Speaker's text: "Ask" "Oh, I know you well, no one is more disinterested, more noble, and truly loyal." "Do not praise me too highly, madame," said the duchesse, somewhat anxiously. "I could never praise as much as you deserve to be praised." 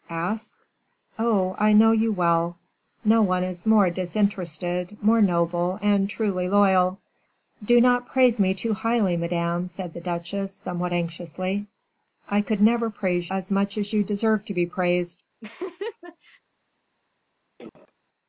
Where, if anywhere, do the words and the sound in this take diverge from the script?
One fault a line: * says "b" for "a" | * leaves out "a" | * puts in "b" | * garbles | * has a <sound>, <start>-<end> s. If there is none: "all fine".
* has a laugh, 15.4-16.4 s
* has a cough, 17.6-17.9 s